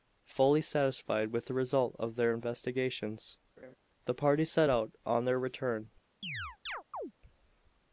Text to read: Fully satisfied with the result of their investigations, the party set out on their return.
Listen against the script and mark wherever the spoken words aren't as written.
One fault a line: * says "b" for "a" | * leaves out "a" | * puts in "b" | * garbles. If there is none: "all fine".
all fine